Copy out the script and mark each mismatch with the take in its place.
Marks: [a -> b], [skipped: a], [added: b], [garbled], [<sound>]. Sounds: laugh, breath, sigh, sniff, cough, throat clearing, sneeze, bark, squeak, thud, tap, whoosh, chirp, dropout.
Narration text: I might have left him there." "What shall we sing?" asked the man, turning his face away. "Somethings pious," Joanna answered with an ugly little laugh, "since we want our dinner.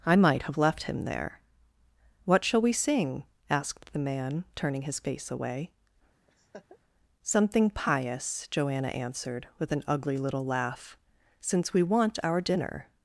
I might have left him there." "What shall we sing?" asked the man, turning his face away. [laugh] ["Somethings -> Something] pious," Joanna answered with an ugly little laugh, "since we want our dinner.